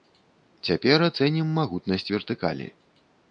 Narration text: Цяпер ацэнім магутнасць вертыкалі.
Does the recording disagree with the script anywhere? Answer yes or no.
no